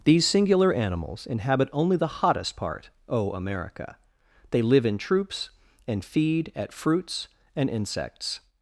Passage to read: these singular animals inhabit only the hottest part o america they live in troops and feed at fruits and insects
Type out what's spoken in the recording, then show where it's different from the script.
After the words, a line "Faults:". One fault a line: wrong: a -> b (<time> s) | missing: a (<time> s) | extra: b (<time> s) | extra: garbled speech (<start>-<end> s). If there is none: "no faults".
these singular animals inhabit only the hottest part o america they live in troops and feed at fruits and insects
Faults:
no faults